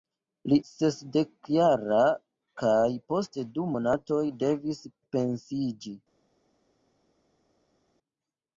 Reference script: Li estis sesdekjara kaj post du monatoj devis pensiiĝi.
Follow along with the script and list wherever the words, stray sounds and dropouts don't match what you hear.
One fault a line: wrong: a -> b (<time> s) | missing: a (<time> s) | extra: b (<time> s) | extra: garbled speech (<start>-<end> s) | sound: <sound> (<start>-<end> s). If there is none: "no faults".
missing: estis (0.6 s)